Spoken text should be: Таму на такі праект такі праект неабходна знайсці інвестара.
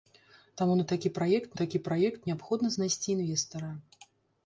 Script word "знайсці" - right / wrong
right